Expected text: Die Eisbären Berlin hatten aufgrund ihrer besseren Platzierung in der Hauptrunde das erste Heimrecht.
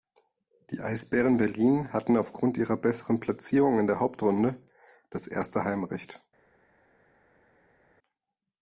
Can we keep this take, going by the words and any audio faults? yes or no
yes